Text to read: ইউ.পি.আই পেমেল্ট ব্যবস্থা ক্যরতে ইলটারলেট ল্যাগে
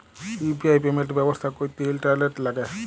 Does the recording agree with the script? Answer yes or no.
yes